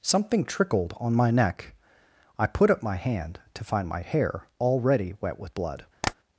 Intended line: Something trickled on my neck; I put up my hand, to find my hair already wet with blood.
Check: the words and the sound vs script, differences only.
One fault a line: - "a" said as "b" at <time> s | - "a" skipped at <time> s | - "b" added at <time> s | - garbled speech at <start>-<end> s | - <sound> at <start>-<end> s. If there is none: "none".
- tap at 6.0-6.1 s